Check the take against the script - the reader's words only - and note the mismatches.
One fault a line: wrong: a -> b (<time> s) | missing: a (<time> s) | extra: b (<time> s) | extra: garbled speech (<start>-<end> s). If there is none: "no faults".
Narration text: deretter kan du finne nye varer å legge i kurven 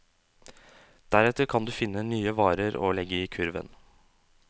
no faults